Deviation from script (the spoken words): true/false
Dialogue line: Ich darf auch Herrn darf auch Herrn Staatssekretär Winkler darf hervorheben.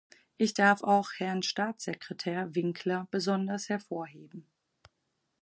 true